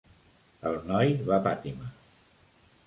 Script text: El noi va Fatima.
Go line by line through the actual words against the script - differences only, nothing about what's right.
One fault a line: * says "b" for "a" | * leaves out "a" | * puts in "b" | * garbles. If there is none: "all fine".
all fine